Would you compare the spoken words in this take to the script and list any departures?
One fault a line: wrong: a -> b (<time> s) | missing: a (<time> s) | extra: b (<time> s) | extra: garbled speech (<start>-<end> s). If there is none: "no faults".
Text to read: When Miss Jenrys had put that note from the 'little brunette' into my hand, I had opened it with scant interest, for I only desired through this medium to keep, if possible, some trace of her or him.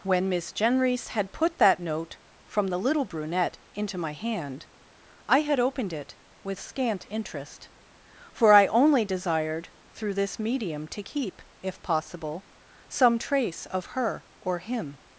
no faults